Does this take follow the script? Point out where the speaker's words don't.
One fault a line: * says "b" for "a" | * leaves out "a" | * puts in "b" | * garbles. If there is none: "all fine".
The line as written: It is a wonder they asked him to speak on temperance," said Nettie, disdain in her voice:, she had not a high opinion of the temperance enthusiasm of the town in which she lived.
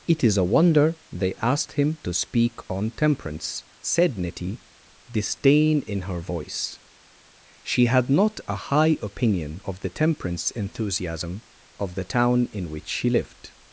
all fine